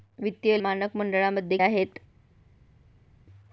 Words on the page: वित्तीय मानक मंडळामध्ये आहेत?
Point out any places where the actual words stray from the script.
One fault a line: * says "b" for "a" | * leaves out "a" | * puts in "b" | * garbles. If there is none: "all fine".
all fine